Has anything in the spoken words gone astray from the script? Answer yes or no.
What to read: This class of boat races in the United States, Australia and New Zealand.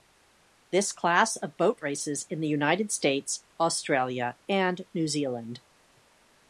no